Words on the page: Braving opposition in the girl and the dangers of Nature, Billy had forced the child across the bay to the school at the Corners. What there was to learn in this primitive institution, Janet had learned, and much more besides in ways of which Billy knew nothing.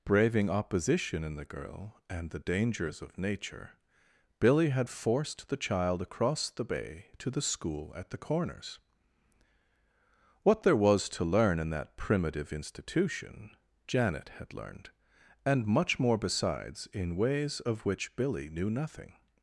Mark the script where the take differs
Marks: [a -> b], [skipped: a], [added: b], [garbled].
Braving opposition in the girl and the dangers of Nature, Billy had forced the child across the bay to the school at the Corners. What there was to learn in [this -> that] primitive institution, Janet had learned, and much more besides in ways of which Billy knew nothing.